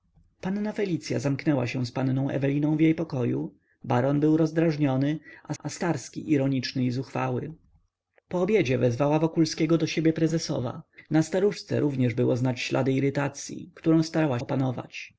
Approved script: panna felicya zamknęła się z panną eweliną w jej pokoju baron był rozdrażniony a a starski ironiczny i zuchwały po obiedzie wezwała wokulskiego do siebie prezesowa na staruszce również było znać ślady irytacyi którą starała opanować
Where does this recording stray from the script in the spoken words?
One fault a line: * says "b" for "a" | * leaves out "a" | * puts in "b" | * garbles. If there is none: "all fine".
all fine